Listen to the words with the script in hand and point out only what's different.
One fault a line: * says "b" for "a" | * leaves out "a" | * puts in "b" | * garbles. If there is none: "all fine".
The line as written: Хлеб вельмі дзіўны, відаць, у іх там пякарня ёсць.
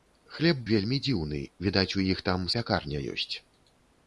all fine